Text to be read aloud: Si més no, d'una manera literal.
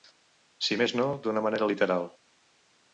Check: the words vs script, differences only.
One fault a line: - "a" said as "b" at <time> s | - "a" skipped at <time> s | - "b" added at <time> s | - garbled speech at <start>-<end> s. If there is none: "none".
none